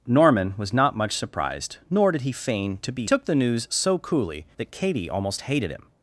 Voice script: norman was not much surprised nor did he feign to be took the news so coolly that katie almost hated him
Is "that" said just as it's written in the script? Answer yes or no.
yes